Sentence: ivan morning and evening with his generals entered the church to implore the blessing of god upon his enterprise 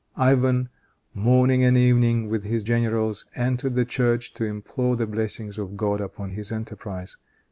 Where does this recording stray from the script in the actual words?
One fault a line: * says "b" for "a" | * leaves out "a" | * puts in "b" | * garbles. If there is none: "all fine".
all fine